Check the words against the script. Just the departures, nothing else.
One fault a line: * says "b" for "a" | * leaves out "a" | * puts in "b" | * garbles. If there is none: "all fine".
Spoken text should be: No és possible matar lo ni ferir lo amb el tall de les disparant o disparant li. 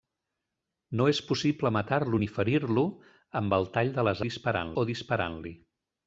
all fine